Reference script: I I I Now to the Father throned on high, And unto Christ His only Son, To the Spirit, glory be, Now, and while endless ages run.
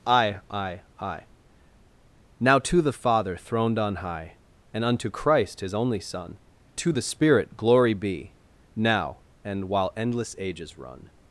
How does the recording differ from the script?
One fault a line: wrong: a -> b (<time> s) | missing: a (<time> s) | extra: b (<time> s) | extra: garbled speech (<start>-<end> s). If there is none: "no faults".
no faults